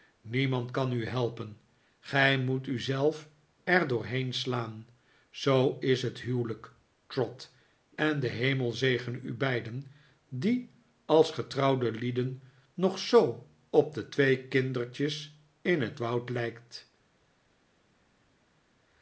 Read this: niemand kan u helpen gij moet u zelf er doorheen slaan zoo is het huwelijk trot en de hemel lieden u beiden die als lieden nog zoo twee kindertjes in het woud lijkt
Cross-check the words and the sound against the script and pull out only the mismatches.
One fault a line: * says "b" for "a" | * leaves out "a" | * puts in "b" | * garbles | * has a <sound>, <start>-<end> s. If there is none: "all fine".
* says "zegene" for "lieden"
* puts in "getrouwde"
* puts in "op de"